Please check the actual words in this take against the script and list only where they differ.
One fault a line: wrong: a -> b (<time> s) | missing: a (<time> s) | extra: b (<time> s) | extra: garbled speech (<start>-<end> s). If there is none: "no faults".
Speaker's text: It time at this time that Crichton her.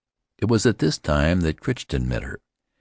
wrong: time -> was (0.5 s)
extra: met (2.1 s)